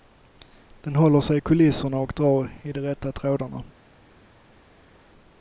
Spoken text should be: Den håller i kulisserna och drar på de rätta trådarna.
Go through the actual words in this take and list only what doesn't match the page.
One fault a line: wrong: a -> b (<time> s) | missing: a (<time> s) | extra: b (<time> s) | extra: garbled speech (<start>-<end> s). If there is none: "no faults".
extra: sig (1.2 s)
wrong: på -> i (2.6 s)